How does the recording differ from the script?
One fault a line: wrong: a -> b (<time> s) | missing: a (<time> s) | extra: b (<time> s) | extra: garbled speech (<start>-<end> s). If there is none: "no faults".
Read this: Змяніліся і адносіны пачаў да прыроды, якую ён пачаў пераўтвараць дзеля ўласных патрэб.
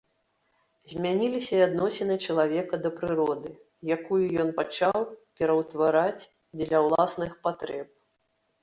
wrong: пачаў -> чалавека (2.3 s)